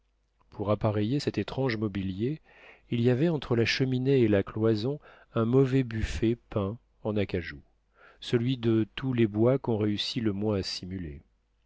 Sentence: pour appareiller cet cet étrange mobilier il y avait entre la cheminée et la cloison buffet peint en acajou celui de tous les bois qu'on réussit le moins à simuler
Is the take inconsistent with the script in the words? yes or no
yes